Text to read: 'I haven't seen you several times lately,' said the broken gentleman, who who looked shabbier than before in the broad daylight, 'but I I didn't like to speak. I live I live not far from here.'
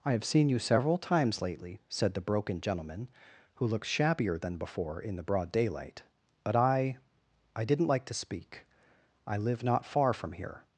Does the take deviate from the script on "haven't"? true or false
true